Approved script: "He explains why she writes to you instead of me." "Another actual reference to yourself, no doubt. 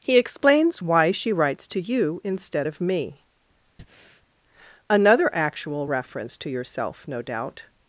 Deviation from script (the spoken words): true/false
false